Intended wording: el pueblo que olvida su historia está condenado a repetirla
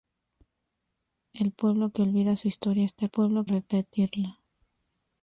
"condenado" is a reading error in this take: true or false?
true